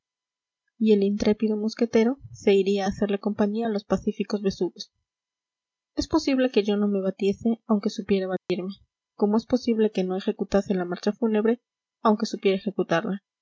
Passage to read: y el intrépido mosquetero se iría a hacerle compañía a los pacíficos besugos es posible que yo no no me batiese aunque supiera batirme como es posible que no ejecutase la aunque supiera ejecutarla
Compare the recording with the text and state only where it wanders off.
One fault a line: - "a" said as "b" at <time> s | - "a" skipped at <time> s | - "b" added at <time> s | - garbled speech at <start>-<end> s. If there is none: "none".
- "no" skipped at 6.9 s
- "marcha fúnebre" added at 10.8 s